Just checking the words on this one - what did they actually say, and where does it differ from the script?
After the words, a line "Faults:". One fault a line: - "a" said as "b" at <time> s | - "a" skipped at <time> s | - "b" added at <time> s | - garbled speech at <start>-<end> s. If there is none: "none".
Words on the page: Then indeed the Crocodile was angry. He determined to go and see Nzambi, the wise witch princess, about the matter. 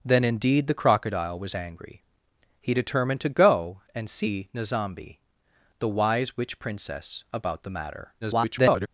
Then indeed the Crocodile was angry. He determined to go and see Nzambi, the wise witch princess, about the matter. [garbled]
Faults:
- garbled speech at 8.2-8.9 s